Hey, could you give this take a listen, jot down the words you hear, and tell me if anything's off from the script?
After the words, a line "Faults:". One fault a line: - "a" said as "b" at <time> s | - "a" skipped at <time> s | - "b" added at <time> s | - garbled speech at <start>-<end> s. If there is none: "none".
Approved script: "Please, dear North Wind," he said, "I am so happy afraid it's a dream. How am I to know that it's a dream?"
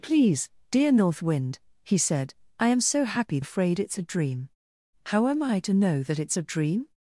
"Please, dear North Wind," he said, "I am so happy afraid it's a dream. How am I to know that it's a dream?"
Faults:
none